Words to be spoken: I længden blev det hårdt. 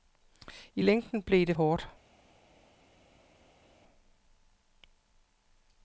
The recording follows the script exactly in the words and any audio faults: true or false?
true